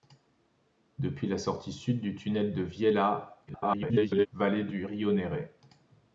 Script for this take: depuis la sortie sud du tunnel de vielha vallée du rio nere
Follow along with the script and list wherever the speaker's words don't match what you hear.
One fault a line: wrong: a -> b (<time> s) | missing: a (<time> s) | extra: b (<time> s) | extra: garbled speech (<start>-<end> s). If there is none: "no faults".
extra: garbled speech (3.5-4.3 s)